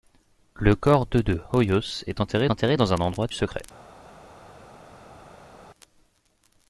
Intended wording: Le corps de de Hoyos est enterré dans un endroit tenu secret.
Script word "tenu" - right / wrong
wrong